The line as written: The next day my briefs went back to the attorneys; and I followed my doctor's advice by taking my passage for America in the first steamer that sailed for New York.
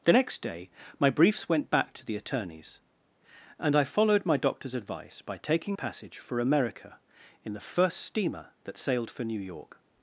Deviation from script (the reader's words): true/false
true